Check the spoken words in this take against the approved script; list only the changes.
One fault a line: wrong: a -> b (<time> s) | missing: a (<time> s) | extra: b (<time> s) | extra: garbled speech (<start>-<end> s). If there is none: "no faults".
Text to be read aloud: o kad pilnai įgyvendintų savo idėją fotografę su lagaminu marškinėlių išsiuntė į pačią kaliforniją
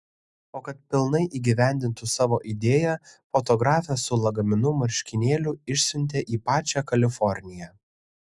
no faults